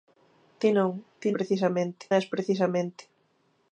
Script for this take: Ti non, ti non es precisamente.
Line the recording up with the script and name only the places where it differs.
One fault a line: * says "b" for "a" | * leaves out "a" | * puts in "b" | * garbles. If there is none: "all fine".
* says "precisamente" for "non"